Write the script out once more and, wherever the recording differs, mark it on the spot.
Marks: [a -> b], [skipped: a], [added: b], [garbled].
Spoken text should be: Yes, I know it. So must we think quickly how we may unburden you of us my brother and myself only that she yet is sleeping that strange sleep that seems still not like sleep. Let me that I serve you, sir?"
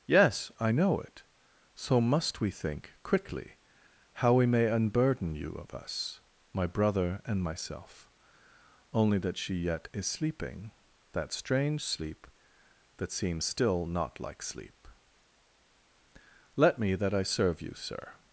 Yes, I know it. So must we think quickly how we may unburden you of us my brother and myself only that she yet is sleeping that strange sleep that seems still not like sleep. Let me that I serve you, sir?"